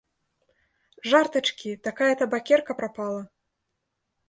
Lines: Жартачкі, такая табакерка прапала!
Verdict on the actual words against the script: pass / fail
pass